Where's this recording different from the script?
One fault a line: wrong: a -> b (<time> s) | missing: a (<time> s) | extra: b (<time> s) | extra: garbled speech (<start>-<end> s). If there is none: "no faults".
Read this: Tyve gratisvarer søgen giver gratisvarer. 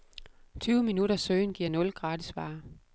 wrong: gratisvarer -> minutters (0.8 s)
extra: nul (1.7 s)